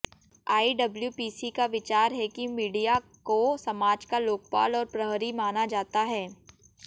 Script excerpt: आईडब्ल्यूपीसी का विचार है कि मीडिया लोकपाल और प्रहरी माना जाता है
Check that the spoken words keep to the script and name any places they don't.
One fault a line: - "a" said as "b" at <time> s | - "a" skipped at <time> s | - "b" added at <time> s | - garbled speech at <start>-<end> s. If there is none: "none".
- "को समाज का" added at 3.2 s